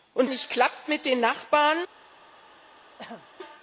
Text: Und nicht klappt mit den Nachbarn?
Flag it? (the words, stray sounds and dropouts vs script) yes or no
yes